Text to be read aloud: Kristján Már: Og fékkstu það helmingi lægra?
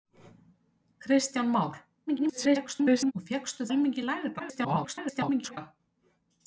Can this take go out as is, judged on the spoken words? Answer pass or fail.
fail